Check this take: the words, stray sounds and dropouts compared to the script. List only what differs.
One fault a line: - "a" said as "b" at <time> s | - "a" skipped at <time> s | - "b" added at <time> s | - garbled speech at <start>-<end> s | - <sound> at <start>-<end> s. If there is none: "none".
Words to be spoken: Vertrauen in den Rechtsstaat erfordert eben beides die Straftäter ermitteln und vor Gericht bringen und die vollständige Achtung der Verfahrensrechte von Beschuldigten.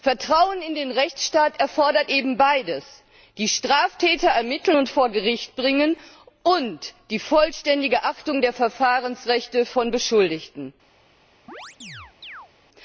- chirp at 11.5-12.5 s